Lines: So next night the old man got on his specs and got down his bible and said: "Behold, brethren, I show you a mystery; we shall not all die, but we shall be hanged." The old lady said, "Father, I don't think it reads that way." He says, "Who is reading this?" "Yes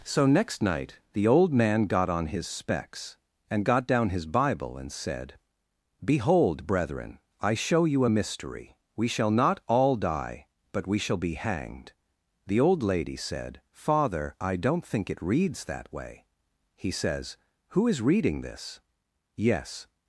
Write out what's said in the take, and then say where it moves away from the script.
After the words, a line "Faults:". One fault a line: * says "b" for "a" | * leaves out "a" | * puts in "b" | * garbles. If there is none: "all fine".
So next night the old man got on his specs and got down his bible and said: "Behold, brethren, I show you a mystery; we shall not all die, but we shall be hanged." The old lady said, "Father, I don't think it reads that way." He says, "Who is reading this?" "Yes
Faults:
all fine